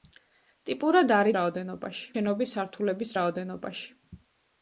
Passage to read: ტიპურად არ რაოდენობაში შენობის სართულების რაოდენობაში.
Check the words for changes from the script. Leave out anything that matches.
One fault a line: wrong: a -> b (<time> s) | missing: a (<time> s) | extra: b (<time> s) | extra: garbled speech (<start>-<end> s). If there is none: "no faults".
no faults